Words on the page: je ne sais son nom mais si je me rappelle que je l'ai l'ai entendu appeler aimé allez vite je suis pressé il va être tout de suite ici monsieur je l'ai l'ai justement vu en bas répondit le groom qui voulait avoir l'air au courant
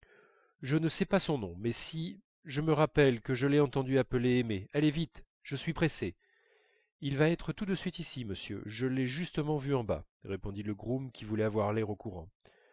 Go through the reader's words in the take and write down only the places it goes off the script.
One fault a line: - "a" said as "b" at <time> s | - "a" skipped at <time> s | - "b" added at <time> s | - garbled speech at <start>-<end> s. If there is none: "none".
- "pas" added at 1.1 s
- "l'ai" skipped at 3.6 s
- "l'ai" skipped at 9.1 s